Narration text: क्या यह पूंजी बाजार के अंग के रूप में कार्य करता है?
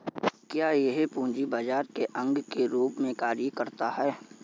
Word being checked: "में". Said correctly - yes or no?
yes